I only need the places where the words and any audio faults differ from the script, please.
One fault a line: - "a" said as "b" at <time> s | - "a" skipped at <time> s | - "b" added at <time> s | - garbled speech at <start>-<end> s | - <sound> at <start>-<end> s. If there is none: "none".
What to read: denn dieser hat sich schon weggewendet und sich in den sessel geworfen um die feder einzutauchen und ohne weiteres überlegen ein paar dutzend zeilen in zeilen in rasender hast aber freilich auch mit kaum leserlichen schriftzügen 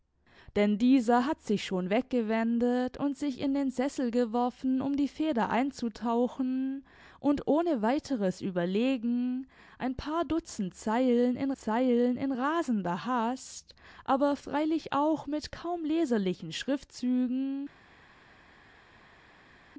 none